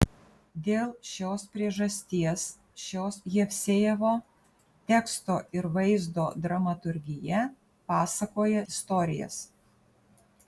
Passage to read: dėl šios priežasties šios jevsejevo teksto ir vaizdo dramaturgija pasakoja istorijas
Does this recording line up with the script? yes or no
yes